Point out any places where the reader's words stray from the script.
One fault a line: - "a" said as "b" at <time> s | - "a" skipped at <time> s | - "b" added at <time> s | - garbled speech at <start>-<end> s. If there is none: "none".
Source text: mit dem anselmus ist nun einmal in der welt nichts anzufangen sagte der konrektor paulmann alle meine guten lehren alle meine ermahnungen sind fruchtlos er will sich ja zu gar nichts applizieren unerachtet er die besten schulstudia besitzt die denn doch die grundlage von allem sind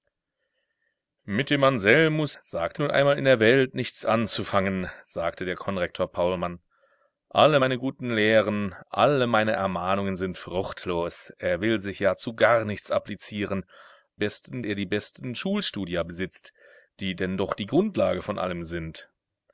- "ist" said as "sagte" at 2.4 s
- "unerachtet" said as "besten" at 14.2 s